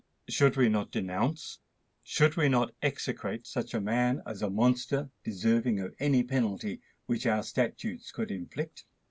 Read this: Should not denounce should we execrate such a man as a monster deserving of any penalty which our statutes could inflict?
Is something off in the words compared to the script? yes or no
yes